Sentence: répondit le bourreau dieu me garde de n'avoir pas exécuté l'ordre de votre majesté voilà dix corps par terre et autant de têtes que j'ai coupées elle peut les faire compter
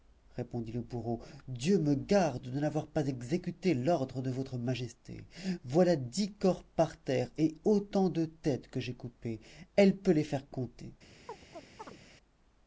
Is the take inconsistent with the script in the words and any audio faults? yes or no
yes